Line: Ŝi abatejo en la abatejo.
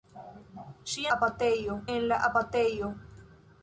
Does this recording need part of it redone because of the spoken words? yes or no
no